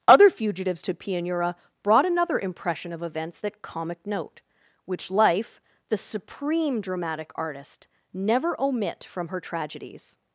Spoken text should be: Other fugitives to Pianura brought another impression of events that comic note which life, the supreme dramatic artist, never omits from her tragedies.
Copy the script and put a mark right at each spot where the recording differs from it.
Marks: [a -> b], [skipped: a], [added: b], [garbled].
Other fugitives to Pianura brought another impression of events that comic note which life, the supreme dramatic artist, never [omits -> omit] from her tragedies.